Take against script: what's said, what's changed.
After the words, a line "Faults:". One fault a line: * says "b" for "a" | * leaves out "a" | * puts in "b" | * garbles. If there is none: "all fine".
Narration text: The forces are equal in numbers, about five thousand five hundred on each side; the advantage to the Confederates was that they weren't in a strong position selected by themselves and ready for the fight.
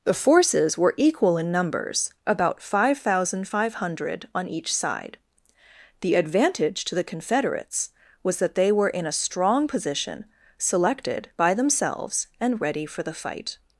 The forces were equal in numbers, about five thousand five hundred on each side; the advantage to the Confederates was that they were in a strong position selected by themselves and ready for the fight.
Faults:
* says "were" for "are"
* says "were" for "weren't"